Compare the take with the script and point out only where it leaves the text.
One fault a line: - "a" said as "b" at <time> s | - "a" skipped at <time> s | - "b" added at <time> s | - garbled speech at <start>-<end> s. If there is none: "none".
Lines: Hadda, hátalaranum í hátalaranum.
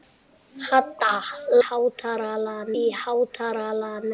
none